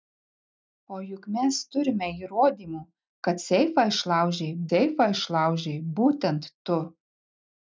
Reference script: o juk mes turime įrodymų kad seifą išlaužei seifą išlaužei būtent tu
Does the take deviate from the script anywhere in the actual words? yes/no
no